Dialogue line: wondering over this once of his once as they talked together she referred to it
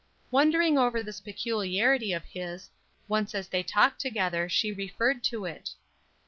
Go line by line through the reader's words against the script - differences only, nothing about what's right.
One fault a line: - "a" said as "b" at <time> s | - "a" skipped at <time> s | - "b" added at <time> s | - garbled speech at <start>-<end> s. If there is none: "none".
- "once" said as "peculiarity" at 1.2 s